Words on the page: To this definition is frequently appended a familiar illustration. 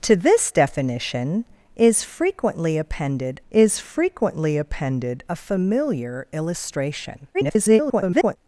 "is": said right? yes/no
yes